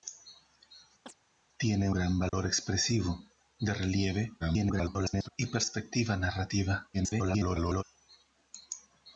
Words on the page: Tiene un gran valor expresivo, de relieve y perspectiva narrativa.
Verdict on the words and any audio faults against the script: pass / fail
fail